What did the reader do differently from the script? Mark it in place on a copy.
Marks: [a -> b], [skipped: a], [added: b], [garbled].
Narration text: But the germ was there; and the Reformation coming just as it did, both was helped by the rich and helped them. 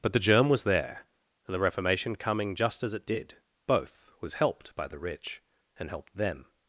But the germ was there; and the Reformation coming just as it did, both was helped by the rich and helped them.